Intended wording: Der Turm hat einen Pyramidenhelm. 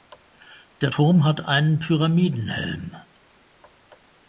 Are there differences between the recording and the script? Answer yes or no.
no